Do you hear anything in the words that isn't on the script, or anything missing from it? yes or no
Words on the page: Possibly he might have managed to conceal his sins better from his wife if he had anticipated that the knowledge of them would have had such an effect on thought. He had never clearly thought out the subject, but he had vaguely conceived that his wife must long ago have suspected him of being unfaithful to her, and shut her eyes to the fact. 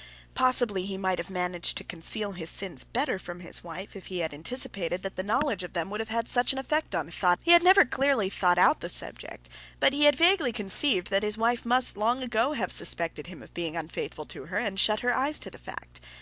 no